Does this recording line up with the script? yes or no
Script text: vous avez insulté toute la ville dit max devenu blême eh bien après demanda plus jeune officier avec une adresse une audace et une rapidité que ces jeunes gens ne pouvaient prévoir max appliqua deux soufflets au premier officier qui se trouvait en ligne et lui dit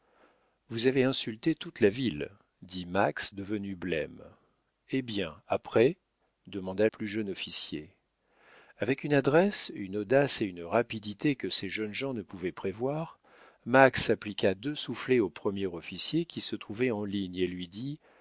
yes